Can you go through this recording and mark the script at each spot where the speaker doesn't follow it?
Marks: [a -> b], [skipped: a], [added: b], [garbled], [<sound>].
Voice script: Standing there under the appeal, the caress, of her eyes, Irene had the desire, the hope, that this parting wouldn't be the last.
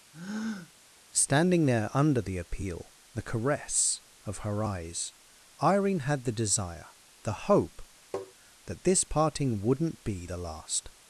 [breath] Standing there under the appeal, the caress, of her eyes, Irene had the desire, the hope, [tap] that this parting wouldn't be the last.